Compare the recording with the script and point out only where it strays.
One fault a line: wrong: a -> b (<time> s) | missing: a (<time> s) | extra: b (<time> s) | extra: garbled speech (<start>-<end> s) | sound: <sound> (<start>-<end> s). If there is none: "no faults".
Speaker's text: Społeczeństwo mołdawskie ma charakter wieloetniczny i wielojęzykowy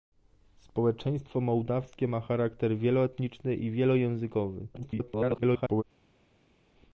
extra: garbled speech (4.7-5.8 s)